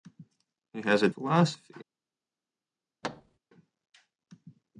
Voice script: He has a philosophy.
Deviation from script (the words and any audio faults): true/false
true